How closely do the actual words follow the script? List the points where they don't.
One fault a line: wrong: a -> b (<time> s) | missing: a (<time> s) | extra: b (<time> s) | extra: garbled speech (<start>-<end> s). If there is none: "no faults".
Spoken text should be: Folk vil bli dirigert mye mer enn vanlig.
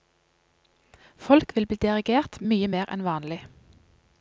no faults